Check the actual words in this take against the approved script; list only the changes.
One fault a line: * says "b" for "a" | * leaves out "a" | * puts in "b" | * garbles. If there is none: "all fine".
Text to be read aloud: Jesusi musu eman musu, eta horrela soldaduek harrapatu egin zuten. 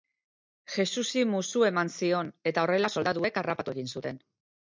* says "zion" for "musu"